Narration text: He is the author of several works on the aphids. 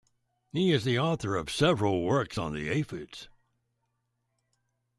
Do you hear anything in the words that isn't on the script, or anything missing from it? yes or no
no